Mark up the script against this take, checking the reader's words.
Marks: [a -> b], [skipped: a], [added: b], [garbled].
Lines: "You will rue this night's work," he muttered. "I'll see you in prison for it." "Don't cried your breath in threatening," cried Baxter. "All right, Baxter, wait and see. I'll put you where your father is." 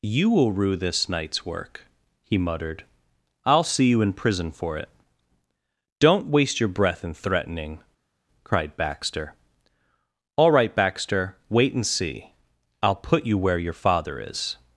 "You will rue this night's work," he muttered. "I'll see you in prison for it." "Don't [cried -> waste] your breath in threatening," cried Baxter. "All right, Baxter, wait and see. I'll put you where your father is."